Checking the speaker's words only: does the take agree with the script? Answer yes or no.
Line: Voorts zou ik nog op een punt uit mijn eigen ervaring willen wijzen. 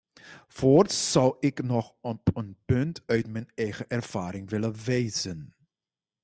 yes